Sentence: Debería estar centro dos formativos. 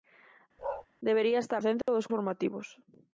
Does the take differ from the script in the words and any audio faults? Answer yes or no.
yes